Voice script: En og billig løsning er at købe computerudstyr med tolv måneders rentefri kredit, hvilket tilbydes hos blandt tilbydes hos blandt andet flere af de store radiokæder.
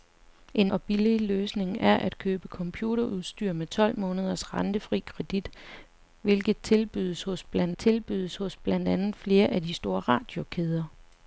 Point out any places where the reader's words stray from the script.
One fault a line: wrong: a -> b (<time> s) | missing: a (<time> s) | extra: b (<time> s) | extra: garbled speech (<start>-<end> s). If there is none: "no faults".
no faults